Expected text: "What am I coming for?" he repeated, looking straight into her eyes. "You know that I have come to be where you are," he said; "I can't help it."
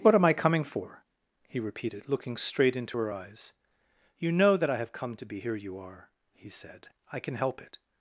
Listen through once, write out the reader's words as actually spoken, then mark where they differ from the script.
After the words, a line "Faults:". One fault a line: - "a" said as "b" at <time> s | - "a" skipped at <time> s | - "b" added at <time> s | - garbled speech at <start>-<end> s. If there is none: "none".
"What am I coming for?" he repeated, looking straight into her eyes. "You know that I have come to be here you are," he said; "I can help it."
Faults:
- "where" said as "here" at 5.4 s
- "can't" said as "can" at 7.2 s